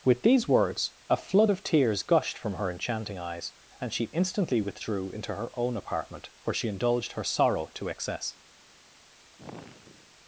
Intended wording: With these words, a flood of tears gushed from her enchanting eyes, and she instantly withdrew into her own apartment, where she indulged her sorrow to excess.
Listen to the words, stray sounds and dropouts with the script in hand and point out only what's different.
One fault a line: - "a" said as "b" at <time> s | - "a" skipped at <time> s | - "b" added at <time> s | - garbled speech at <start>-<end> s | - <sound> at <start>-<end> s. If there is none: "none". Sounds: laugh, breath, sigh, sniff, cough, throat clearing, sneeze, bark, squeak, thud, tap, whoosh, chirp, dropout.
- sigh at 9.3-10.2 s